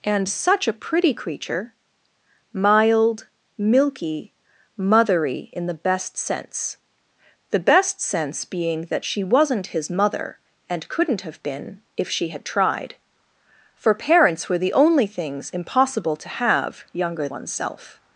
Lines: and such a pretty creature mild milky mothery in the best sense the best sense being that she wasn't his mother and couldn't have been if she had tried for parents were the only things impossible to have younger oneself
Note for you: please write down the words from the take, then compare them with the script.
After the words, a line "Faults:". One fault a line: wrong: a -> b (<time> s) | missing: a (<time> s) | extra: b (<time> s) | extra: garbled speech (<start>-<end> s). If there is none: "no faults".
and such a pretty creature mild milky mothery in the best sense the best sense being that she wasn't his mother and couldn't have been if she had tried for parents were the only things impossible to have younger oneself
Faults:
no faults